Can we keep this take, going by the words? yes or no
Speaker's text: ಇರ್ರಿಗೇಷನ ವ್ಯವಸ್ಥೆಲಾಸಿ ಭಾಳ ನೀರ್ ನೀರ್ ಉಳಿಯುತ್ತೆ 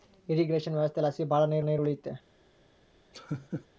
yes